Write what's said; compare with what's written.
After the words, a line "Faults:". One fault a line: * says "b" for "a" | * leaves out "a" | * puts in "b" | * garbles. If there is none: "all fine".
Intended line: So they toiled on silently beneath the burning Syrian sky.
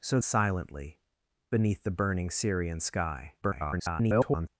So silently beneath the burning Syrian sky. [garbled]
Faults:
* leaves out "they toiled on"
* garbles